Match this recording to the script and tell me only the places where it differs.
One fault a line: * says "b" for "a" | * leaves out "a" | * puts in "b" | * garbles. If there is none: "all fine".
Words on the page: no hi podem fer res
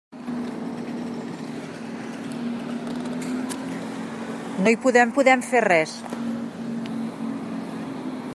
* puts in "podem"